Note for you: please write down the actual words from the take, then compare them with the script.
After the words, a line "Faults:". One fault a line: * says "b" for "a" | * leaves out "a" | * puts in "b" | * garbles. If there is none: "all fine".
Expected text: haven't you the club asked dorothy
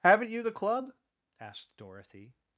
haven't you the club asked dorothy
Faults:
all fine